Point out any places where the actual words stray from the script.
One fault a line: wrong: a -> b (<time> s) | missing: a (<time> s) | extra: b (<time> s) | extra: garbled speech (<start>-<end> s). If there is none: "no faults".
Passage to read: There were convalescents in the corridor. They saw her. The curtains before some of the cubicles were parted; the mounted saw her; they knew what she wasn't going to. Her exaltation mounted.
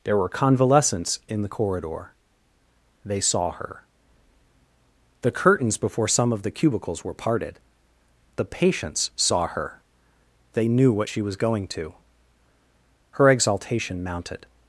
wrong: mounted -> patients (8.4 s)
wrong: wasn't -> was (11.2 s)